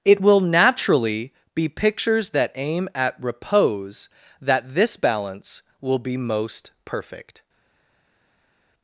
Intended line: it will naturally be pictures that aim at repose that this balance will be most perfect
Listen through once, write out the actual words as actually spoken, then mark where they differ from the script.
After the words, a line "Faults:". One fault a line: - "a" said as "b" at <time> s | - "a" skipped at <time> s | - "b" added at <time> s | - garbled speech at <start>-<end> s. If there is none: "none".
it will naturally be pictures that aim at repose that this balance will be most perfect
Faults:
none